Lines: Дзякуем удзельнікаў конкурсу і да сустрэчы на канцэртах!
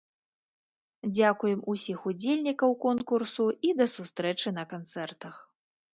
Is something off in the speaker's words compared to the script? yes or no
yes